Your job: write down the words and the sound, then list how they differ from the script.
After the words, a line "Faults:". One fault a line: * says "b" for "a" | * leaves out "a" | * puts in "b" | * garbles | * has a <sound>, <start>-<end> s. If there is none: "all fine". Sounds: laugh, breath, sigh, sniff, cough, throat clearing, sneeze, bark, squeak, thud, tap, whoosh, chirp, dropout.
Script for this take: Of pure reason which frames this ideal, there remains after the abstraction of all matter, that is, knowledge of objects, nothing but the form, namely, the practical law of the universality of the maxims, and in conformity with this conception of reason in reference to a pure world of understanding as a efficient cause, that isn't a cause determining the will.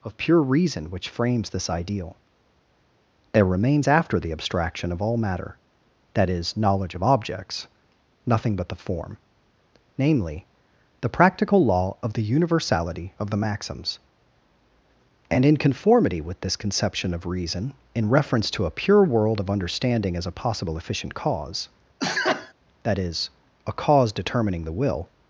Of pure reason which frames this ideal, there remains after the abstraction of all matter, that is, knowledge of objects, nothing but the form, namely, the practical law of the universality of the maxims, and in conformity with this conception of reason in reference to a pure world of understanding as a possible efficient cause, that is a cause determining the will.
Faults:
* puts in "possible"
* has a sneeze, 22.0-22.5 s
* says "is" for "isn't"